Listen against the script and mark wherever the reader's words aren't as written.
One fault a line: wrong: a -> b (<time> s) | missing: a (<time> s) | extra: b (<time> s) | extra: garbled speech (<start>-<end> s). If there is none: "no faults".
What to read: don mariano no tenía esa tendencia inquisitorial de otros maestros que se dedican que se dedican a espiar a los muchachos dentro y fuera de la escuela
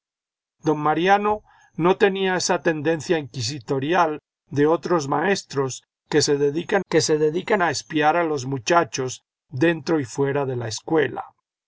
no faults